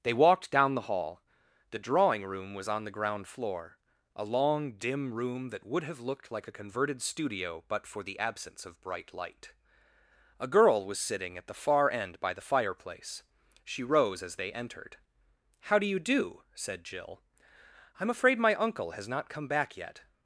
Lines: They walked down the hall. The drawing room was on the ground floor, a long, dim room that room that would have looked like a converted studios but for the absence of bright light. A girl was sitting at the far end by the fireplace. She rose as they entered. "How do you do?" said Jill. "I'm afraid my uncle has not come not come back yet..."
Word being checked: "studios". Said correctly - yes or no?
no